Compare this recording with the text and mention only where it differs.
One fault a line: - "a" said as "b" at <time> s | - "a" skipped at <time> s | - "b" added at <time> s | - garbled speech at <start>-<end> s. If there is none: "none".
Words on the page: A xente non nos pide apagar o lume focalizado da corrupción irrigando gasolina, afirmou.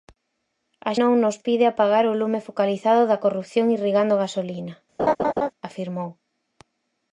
- "xente" skipped at 0.9 s